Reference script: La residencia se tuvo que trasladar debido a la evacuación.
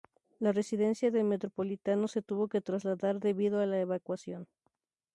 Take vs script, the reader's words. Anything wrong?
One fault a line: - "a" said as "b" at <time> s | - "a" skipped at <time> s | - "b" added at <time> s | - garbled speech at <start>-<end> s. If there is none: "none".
- "del Metropolitano" added at 1.1 s